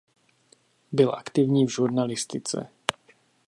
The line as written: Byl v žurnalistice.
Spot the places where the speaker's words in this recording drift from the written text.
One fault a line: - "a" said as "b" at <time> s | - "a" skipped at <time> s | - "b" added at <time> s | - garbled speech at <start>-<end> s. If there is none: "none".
- "aktivní" added at 1.1 s